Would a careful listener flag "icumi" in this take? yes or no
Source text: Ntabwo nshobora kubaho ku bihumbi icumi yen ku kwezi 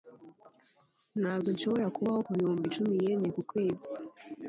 no